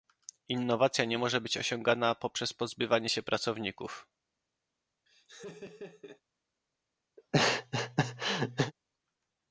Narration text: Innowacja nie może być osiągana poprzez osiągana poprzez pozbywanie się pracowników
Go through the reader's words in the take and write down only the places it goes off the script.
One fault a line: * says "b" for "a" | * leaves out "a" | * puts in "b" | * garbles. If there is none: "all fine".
* leaves out "osiągana poprzez"